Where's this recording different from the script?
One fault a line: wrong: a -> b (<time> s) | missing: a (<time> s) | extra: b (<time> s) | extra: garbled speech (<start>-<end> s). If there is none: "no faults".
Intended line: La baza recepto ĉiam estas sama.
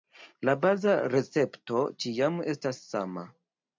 no faults